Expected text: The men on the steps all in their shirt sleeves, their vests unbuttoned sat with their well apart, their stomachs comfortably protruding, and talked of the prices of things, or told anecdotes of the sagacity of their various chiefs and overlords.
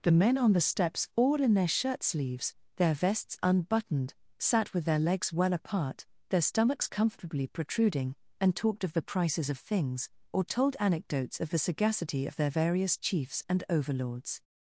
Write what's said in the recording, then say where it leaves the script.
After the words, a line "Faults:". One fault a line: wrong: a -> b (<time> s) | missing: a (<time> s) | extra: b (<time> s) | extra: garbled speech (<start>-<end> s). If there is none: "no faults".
The men on the steps all in their shirt sleeves, their vests unbuttoned sat with their legs well apart, their stomachs comfortably protruding, and talked of the prices of things, or told anecdotes of the sagacity of their various chiefs and overlords.
Faults:
extra: legs (5.0 s)